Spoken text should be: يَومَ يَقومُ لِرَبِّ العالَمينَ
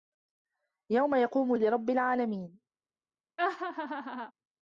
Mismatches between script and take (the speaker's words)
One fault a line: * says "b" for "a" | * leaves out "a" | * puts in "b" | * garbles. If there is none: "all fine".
all fine